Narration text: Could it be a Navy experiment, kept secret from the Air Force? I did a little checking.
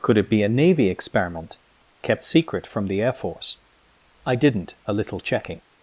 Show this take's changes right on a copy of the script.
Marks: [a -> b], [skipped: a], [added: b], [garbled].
Could it be a Navy experiment, kept secret from the Air Force? I [did -> didn't] a little checking.